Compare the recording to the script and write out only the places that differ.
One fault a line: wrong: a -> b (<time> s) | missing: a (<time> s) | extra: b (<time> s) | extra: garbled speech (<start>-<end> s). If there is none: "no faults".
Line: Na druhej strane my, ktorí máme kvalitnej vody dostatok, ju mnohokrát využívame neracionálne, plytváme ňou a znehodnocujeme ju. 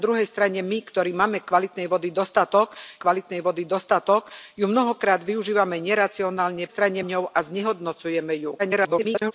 extra: kvalitnej vody dostatok (3.0 s)
wrong: plytváme -> strane (6.7 s)
extra: garbled speech (8.6-9.3 s)